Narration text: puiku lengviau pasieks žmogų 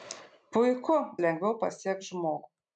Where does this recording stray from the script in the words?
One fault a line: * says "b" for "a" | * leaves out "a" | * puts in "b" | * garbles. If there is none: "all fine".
all fine